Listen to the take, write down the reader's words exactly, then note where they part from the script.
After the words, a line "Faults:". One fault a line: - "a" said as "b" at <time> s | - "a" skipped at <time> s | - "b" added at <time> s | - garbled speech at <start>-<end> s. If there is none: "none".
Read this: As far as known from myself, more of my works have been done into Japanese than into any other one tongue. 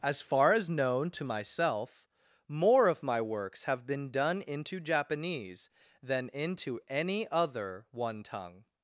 As far as known to myself, more of my works have been done into Japanese than into any other one tongue.
Faults:
- "from" said as "to" at 1.1 s